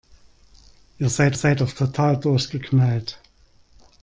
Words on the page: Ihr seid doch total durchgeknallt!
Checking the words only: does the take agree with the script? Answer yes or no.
no